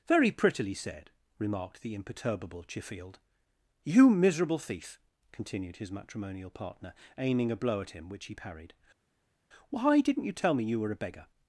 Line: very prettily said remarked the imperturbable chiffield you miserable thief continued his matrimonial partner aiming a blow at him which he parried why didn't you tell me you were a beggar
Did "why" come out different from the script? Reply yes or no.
no